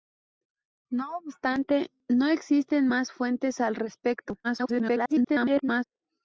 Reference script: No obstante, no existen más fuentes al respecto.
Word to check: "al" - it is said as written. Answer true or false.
true